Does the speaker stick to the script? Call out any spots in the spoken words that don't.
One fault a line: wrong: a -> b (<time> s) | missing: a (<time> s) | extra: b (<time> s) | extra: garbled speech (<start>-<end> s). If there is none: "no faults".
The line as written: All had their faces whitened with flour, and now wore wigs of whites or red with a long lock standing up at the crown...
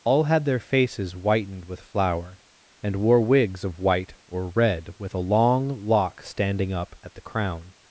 missing: now (3.0 s)
wrong: whites -> white (3.8 s)